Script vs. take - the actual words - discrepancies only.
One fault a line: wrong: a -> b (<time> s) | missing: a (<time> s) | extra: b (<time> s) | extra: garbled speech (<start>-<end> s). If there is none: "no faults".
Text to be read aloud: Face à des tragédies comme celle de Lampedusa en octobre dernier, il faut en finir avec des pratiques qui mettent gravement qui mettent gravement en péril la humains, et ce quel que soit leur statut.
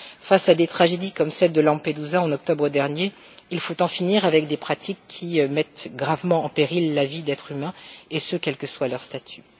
missing: qui mettent gravement (6.5 s)
extra: vie d'êtres (7.1 s)